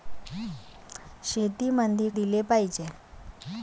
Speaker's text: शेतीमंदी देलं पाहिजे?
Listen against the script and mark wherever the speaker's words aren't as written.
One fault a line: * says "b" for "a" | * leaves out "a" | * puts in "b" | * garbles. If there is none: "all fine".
all fine